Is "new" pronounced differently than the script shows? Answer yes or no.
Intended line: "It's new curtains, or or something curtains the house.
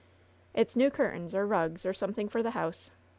no